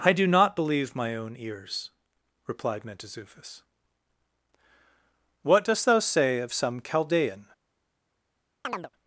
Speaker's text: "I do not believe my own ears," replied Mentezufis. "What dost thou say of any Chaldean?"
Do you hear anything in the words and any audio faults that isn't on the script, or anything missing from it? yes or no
yes